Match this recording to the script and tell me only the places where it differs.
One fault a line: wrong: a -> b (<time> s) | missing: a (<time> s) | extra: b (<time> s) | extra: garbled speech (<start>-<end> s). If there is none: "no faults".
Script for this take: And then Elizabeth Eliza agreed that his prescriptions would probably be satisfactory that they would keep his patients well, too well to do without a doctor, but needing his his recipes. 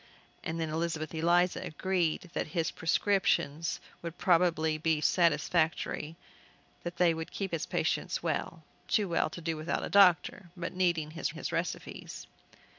no faults